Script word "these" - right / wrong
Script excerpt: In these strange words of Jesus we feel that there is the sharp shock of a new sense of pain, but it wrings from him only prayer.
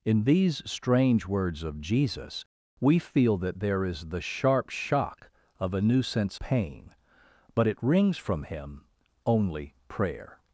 right